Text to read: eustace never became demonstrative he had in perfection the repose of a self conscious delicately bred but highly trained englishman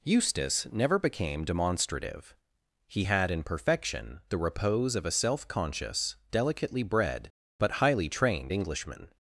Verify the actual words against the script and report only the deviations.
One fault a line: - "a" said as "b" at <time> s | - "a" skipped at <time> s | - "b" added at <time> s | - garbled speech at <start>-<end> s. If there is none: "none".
none